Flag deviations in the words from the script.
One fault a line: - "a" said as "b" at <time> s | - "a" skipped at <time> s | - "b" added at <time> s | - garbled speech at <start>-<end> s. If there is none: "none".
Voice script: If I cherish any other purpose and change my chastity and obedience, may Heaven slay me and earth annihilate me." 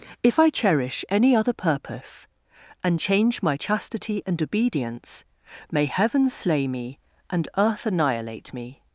none